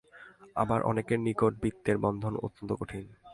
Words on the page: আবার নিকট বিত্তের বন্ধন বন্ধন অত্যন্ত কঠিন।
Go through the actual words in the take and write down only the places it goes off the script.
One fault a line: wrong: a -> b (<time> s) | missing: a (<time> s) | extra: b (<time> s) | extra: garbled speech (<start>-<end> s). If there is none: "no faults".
extra: অনেকের (0.8 s)
missing: বন্ধন (2.3 s)